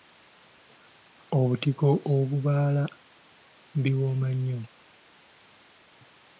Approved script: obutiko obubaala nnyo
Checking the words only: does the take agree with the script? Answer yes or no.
no